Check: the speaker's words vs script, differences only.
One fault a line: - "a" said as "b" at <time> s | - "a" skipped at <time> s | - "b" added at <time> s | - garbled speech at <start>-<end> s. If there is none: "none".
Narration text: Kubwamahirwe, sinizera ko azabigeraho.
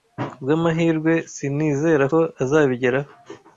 none